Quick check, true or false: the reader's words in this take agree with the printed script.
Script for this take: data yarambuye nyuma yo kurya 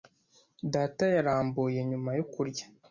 true